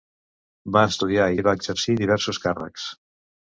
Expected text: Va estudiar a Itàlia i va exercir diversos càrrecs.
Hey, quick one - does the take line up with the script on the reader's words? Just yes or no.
no